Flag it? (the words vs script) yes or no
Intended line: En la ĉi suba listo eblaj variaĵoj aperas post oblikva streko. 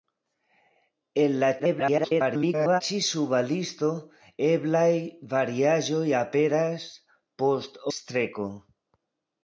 yes